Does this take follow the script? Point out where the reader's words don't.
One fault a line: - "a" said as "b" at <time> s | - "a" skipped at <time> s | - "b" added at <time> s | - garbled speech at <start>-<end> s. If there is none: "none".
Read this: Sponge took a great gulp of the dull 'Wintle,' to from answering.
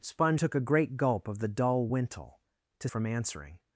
none